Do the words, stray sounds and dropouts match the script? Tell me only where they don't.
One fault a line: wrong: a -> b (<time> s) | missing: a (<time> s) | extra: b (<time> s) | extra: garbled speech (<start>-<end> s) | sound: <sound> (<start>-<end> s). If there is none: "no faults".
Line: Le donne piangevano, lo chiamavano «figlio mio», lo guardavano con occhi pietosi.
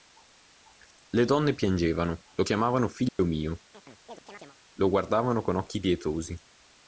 sound: dropout (3.1-3.2 s)
sound: chirp (3.7-4.6 s)